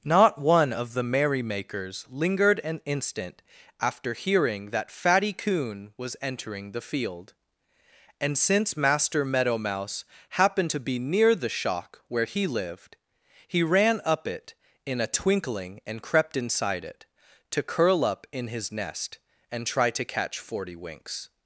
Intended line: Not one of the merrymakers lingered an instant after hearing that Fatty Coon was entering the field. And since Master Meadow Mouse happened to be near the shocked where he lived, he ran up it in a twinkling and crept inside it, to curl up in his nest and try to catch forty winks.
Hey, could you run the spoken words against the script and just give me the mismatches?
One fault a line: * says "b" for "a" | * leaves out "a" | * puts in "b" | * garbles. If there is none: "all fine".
* says "shock" for "shocked"